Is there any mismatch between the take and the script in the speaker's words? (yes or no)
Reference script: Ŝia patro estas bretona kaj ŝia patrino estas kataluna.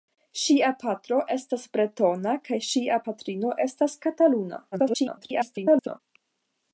yes